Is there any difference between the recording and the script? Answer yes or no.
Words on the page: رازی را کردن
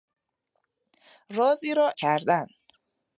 no